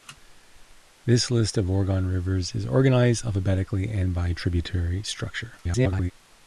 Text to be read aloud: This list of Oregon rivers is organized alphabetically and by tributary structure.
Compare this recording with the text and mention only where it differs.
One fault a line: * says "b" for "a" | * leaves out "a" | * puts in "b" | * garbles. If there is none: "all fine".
* garbles